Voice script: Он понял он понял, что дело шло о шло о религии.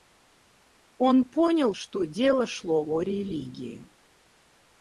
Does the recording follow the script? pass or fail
fail